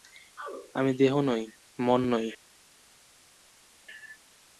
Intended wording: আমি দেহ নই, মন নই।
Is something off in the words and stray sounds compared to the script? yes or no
no